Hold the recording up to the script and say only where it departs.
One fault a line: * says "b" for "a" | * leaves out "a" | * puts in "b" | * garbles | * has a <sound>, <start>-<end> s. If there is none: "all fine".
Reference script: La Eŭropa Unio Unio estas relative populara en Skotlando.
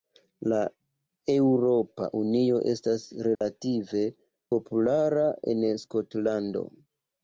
* leaves out "Unio"
* has a dropout, 3.4-3.4 s